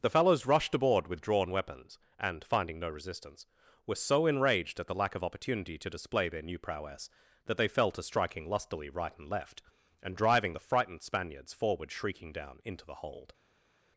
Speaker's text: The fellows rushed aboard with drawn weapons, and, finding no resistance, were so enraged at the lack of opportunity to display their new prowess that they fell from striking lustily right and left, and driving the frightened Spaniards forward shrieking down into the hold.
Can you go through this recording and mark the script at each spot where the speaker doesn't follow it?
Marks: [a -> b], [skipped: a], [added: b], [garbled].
The fellows rushed aboard with drawn weapons, and, finding no resistance, were so enraged at the lack of opportunity to display their new prowess that they fell [from -> to] striking lustily right and left, and driving the frightened Spaniards forward shrieking down into the hold.